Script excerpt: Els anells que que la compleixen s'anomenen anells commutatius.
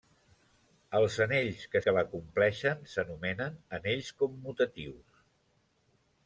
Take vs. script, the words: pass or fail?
pass